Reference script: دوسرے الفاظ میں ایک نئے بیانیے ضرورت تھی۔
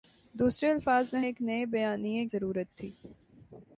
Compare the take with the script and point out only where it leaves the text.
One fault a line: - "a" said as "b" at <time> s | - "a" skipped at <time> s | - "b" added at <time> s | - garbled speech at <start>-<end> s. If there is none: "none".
none